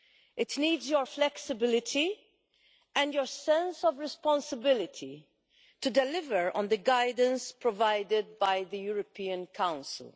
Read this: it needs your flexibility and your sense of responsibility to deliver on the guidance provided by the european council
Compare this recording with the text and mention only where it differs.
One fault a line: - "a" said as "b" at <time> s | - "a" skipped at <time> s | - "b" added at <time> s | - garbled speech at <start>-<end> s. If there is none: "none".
none